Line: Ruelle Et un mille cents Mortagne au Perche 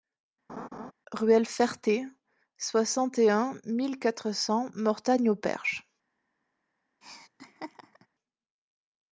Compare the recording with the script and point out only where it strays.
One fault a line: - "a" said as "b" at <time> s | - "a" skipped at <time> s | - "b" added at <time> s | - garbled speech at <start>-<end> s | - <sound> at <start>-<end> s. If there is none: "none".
- laugh at 0.5-0.9 s
- "Ferté soixante" added at 1.5 s
- "quatre" added at 4.0 s
- laugh at 7.0-8.1 s